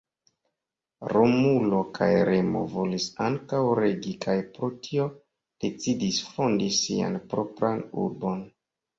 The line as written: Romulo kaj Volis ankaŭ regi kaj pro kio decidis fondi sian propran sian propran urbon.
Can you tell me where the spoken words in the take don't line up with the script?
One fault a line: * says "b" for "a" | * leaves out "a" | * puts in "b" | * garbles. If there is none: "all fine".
* puts in "Remo"
* says "tio" for "kio"
* leaves out "sian propran"